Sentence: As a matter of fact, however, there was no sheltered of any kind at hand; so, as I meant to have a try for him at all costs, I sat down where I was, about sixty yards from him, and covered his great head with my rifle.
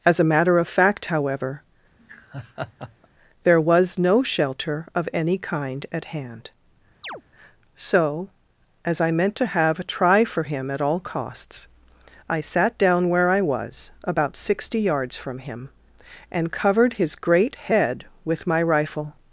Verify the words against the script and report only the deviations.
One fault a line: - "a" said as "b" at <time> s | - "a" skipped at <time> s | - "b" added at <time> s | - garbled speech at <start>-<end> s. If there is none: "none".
- "sheltered" said as "shelter" at 4.2 s